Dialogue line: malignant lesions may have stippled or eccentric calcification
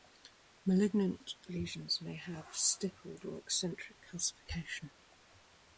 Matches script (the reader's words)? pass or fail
pass